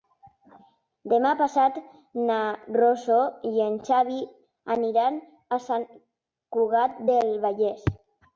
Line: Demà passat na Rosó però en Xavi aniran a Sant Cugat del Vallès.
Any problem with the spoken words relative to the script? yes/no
yes